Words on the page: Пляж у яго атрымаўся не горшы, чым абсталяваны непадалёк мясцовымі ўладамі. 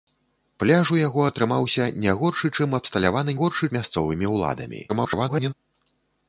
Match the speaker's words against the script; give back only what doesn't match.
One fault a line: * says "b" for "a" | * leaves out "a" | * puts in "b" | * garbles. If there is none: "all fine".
* says "горшы" for "непадалёк"
* garbles